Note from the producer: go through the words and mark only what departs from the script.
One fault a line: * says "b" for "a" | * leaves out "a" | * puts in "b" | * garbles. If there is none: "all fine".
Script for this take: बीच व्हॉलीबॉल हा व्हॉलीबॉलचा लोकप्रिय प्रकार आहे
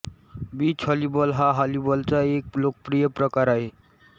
* puts in "एक"